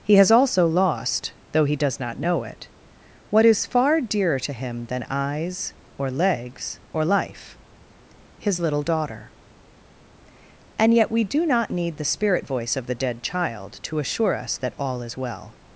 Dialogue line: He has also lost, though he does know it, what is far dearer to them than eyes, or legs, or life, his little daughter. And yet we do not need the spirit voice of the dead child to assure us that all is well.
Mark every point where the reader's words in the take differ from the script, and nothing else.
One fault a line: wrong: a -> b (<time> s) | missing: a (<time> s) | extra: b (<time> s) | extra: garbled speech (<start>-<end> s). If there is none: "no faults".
extra: not (2.0 s)
wrong: them -> him (4.5 s)